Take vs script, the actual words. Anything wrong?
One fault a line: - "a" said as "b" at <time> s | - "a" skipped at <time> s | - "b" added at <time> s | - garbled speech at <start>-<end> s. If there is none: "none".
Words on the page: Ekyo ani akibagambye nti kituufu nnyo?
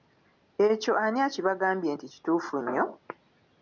none